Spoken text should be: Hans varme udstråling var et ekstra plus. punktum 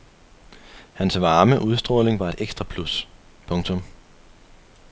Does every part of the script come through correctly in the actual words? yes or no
yes